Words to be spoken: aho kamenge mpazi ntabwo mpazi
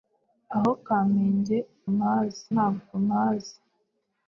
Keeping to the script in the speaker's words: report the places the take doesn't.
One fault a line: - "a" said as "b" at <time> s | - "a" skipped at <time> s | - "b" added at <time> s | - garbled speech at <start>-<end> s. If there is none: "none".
none